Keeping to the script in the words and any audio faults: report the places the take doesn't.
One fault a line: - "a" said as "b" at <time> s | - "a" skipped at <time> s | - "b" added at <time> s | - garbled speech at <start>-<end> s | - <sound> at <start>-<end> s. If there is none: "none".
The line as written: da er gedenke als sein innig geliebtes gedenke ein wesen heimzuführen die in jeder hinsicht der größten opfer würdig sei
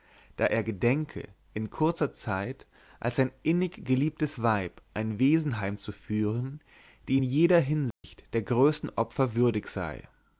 - "in kurzer zeit" added at 1.5 s
- "gedenke" said as "weib" at 4.4 s
- dropout at 7.9-8.0 s